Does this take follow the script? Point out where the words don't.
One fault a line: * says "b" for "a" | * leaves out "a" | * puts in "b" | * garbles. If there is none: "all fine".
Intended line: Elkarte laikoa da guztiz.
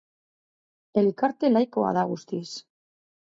all fine